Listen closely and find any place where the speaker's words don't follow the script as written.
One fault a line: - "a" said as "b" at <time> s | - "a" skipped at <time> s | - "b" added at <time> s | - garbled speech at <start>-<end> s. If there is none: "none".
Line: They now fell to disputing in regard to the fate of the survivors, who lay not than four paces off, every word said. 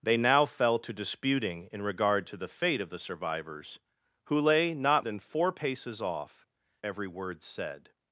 none